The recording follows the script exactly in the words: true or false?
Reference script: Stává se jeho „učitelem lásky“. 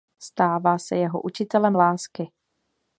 true